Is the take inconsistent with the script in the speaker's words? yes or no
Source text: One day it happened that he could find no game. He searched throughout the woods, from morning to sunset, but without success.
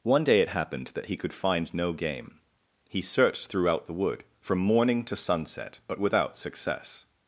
yes